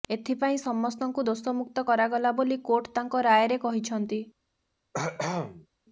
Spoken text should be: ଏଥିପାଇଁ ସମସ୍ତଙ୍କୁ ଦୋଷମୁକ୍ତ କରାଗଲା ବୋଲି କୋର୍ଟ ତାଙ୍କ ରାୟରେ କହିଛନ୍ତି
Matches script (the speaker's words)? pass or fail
pass